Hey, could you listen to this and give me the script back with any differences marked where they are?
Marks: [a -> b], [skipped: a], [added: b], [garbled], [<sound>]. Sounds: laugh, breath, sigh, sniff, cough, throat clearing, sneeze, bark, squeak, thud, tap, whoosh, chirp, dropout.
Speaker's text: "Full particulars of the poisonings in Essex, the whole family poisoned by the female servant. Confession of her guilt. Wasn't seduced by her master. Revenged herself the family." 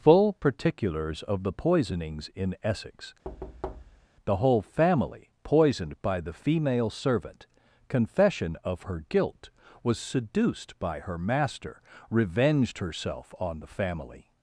"Full particulars of the poisonings in Essex, [thud] the whole family poisoned by the female servant. Confession of her guilt. [Wasn't -> Was] seduced by her master. Revenged herself [added: on] the family."